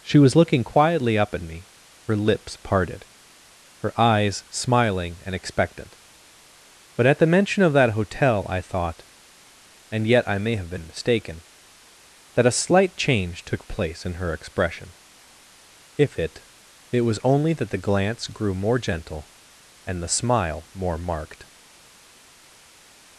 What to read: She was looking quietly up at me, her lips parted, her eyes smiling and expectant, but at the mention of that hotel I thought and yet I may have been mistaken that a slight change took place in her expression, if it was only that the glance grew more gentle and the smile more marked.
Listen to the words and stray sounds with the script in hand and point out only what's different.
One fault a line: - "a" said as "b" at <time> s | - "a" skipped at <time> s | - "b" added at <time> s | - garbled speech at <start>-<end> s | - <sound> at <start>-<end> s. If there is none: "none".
- "it" added at 16.9 s